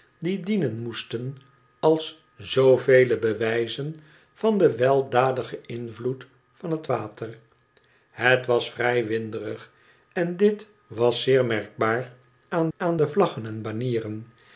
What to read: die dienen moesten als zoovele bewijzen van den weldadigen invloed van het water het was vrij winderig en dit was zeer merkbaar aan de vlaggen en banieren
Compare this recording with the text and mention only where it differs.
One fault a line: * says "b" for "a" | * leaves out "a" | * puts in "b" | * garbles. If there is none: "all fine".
* puts in "aan"